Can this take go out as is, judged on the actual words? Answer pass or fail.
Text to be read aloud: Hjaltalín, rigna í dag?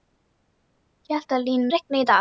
pass